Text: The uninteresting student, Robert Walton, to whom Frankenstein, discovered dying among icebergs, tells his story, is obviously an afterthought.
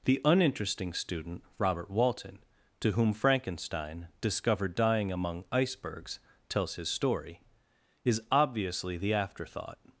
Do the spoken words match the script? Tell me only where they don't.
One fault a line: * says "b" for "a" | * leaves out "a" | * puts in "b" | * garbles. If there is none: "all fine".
* says "the" for "an"